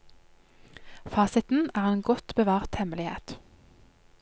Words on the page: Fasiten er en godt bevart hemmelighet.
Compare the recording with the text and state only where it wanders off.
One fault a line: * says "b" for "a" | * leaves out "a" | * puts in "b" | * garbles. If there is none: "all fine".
all fine